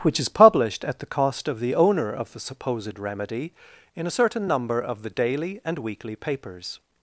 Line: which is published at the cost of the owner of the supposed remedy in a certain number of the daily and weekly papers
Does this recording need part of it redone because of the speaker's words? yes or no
no